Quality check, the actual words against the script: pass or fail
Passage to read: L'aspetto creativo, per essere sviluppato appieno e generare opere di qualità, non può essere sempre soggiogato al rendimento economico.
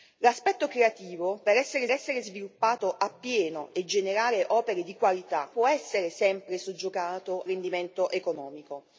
fail